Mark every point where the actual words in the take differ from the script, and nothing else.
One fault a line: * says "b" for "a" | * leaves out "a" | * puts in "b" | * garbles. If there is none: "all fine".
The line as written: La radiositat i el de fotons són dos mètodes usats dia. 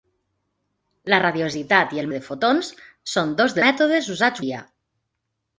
all fine